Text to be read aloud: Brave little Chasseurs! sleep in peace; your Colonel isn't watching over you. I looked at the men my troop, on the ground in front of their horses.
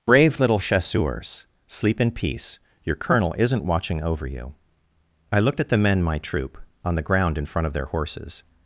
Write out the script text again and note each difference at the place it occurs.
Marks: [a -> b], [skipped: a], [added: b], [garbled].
Brave little Chasseurs! sleep in peace; your Colonel isn't watching over you. I looked at the men my troop, on the ground in front of their horses.